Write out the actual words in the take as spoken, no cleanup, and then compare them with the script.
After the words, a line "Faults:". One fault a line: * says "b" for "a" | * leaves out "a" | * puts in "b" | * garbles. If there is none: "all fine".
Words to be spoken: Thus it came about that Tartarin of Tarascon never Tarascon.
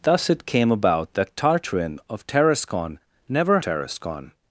Thus it came about that Tartarin of Tarascon never Tarascon.
Faults:
all fine